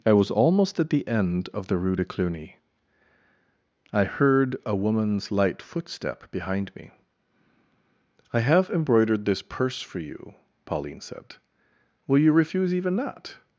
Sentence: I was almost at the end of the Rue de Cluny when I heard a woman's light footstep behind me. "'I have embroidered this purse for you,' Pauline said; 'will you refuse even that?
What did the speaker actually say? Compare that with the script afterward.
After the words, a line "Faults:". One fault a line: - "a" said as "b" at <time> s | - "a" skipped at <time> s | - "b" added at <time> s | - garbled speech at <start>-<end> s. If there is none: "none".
I was almost at the end of the Rue de Cluny I heard a woman's light footstep behind me. "'I have embroidered this purse for you,' Pauline said; 'will you refuse even that?
Faults:
- "when" skipped at 2.6 s